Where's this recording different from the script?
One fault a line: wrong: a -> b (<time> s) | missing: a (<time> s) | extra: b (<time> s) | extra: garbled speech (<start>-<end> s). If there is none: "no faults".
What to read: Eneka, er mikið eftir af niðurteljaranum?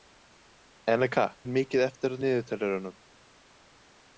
no faults